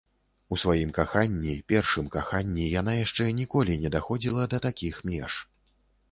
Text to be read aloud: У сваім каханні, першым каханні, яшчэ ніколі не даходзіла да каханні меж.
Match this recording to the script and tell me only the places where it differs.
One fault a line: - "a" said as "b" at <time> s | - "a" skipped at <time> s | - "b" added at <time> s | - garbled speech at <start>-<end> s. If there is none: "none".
- "яна" added at 2.8 s
- "каханні" said as "такіх" at 4.7 s